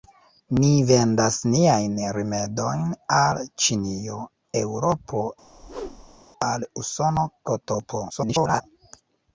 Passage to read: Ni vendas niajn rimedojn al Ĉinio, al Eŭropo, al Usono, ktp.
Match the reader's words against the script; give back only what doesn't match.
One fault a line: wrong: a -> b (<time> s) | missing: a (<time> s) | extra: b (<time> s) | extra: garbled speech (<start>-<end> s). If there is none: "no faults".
missing: al (4.2 s)
extra: garbled speech (8.1-8.6 s)